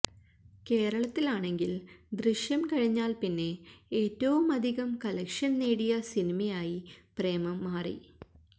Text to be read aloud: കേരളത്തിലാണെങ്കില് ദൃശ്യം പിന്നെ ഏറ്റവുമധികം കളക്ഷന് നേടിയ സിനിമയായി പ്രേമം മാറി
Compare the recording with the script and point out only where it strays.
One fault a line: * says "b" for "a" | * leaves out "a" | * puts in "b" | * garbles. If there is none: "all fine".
* puts in "കഴിഞ്ഞാല്"